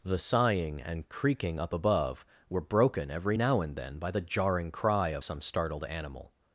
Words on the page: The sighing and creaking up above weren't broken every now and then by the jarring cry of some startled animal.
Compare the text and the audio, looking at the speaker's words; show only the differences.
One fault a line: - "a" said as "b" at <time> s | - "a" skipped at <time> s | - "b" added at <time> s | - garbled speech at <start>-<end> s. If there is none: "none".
- "weren't" said as "were" at 2.5 s